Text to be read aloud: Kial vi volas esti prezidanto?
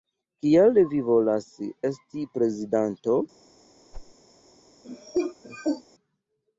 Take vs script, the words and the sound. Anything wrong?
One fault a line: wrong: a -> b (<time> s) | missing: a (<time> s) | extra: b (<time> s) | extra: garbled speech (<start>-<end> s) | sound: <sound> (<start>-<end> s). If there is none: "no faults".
sound: whoosh (3.9-4.2 s)
sound: cough (4.8-5.8 s)